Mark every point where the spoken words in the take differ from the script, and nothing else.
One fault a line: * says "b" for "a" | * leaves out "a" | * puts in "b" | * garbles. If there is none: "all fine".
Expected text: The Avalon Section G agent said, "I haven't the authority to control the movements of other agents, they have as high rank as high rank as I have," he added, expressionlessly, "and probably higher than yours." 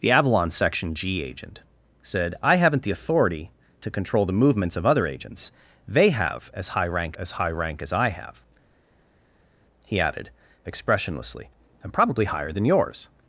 all fine